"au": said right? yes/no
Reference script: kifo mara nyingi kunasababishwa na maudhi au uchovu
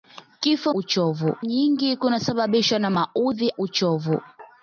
no